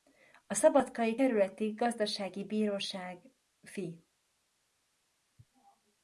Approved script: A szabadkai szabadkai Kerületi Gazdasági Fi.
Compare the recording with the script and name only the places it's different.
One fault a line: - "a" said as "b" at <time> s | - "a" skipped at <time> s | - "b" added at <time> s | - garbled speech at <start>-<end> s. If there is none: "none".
- "szabadkai" skipped at 1.2 s
- "Bíróság" added at 2.4 s